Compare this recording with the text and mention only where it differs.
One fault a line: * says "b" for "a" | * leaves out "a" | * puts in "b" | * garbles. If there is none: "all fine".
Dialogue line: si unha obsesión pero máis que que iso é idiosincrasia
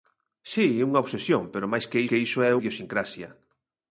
all fine